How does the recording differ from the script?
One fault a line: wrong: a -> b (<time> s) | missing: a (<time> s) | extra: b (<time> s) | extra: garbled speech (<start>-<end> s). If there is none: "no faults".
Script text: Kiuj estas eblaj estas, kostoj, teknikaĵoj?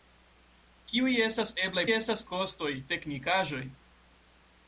no faults